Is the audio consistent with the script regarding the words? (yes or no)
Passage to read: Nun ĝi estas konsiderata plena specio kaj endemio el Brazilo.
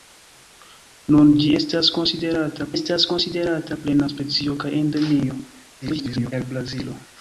no